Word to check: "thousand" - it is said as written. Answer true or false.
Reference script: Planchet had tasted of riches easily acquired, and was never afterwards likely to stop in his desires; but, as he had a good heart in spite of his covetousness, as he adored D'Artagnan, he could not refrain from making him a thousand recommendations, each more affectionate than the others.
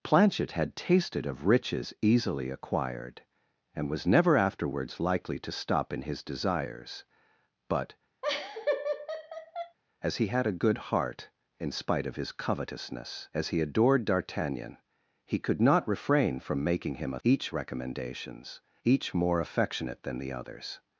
false